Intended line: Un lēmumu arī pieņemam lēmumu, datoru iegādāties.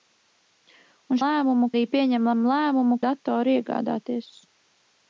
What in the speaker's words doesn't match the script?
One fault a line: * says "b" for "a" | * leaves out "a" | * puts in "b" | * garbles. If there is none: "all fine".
all fine